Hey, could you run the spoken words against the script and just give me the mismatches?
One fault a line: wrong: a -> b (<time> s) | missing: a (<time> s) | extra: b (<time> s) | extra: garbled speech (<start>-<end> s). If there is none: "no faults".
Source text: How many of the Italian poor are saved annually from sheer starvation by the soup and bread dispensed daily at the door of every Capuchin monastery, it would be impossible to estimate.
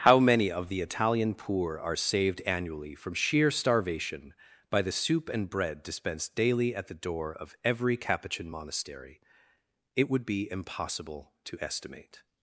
no faults